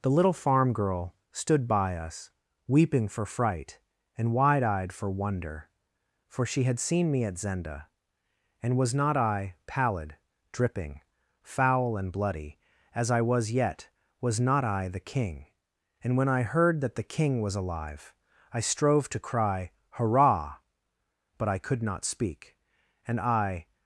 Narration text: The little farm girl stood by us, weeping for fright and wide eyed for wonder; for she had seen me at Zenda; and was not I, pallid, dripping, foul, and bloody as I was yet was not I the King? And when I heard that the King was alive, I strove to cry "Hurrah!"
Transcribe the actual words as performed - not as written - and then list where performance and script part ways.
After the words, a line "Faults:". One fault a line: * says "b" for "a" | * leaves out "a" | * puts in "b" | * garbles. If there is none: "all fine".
The little farm girl stood by us, weeping for fright and wide eyed for wonder; for she had seen me at Zenda; and was not I, pallid, dripping, foul, and bloody as I was yet was not I the King? And when I heard that the King was alive, I strove to cry "Hurrah!" But I could not speak, and I
Faults:
* puts in "But I could not speak and I"